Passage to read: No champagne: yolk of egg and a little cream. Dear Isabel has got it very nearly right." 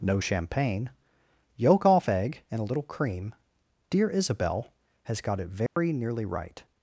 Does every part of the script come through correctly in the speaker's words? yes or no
no